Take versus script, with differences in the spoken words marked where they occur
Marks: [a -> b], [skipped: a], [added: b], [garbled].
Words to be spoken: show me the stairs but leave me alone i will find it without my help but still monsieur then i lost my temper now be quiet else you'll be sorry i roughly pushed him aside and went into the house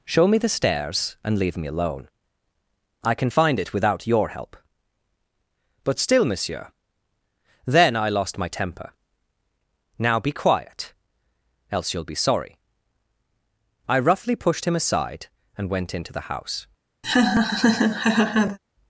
show me the stairs [but -> and] leave me alone i [will -> can] find it without [my -> your] help but still monsieur then i lost my temper now be quiet else you'll be sorry i roughly pushed him aside and went into the house